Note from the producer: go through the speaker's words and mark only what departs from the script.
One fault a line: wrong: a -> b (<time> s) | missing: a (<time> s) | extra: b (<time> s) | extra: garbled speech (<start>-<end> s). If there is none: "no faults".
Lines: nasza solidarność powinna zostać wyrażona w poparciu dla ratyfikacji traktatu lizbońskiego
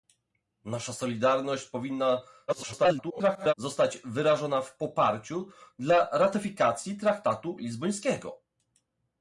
extra: garbled speech (2.5-3.5 s)